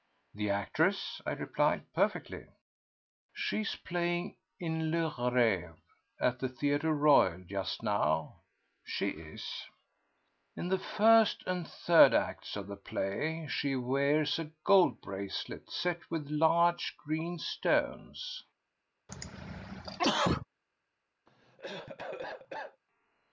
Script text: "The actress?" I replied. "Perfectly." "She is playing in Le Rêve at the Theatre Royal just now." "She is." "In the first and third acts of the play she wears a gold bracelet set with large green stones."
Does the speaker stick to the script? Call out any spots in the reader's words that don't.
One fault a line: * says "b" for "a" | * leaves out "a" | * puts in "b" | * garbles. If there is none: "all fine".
all fine